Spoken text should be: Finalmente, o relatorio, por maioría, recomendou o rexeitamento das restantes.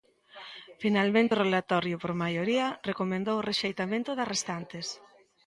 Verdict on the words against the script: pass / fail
pass